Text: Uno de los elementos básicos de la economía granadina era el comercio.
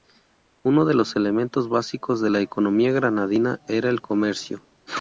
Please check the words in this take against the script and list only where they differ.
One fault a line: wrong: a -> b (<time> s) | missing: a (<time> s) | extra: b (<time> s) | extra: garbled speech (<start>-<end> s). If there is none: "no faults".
no faults